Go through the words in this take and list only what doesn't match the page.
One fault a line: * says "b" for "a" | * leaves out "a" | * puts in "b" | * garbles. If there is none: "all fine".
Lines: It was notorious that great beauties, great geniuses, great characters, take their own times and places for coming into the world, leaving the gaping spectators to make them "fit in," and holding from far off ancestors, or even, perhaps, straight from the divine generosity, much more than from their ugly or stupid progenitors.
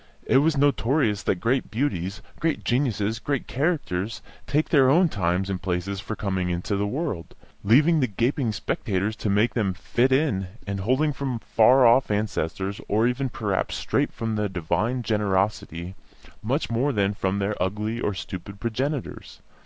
all fine